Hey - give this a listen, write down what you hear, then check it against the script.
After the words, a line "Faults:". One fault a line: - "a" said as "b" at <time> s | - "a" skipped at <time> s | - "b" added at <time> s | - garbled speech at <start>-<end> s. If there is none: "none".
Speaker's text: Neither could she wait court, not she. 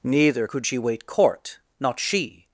Neither could she wait court, not she.
Faults:
none